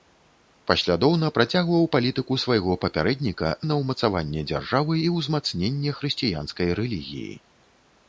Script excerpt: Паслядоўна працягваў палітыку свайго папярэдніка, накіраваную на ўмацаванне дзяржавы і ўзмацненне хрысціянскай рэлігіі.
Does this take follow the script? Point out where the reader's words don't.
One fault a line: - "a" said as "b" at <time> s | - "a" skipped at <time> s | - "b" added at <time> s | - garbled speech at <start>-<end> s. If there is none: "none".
- "накіраваную" skipped at 3.5 s